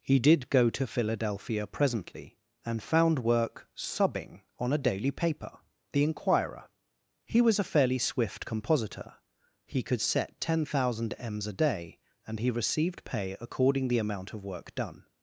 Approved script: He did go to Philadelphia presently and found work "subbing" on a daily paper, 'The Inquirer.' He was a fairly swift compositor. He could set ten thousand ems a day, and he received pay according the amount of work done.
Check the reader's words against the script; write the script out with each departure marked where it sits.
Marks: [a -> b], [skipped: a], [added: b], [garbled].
He did go to Philadelphia presently and found work "subbing" on a daily paper, 'The Inquirer.' He was a fairly swift compositor. He could set ten thousand ems a day, and he received pay according the amount of work done.